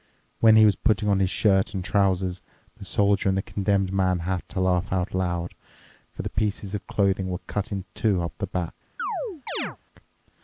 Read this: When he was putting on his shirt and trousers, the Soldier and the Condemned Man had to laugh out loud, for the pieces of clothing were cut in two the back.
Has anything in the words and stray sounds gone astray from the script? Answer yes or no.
yes